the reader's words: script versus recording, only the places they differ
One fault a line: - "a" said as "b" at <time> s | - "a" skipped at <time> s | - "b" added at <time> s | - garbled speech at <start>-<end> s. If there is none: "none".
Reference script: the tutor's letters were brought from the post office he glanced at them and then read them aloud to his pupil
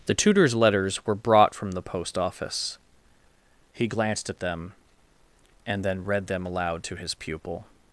none